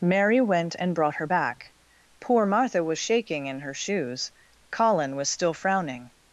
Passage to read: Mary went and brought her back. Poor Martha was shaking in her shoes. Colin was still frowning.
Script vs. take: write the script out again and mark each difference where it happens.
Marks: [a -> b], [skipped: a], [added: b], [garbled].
Mary went and brought her back. Poor Martha was shaking in her shoes. Colin was still frowning.